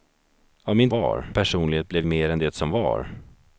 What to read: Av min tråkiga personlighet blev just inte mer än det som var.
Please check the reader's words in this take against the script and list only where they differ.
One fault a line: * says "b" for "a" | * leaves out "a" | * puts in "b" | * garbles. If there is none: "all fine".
* says "var" for "tråkiga"
* leaves out "just inte"